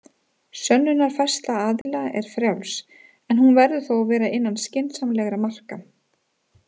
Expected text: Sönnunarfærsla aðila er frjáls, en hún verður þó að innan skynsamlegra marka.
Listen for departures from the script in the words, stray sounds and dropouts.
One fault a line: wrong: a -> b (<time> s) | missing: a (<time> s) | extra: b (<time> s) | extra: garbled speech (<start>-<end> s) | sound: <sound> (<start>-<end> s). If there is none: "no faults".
sound: dropout (1.8-1.9 s)
extra: vera (4.2 s)